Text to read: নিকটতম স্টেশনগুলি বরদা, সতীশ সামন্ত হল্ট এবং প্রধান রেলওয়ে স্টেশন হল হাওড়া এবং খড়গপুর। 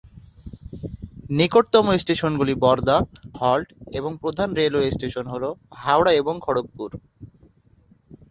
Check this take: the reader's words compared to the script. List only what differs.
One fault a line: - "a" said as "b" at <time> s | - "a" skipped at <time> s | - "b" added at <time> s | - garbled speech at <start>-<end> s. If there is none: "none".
- "সতীশ সামন্ত" skipped at 3.0 s